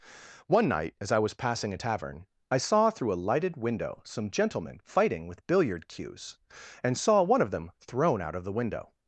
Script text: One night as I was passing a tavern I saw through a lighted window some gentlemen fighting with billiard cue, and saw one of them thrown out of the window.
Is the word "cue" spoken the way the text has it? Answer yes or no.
no